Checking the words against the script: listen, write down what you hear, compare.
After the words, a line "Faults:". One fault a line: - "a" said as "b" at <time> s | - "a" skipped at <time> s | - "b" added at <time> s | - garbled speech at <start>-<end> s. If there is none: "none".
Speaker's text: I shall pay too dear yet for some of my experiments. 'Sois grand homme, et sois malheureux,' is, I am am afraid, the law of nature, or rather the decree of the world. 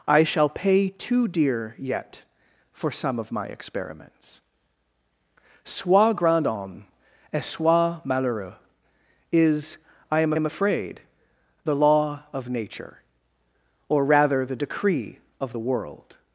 I shall pay too dear yet for some of my experiments. 'Sois grand homme, et sois malheureux,' is, I am am afraid, the law of nature, or rather the decree of the world.
Faults:
none